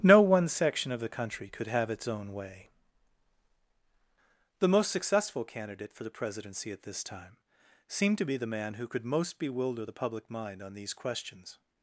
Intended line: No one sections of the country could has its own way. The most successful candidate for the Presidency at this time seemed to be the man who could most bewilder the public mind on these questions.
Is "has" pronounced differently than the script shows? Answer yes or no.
yes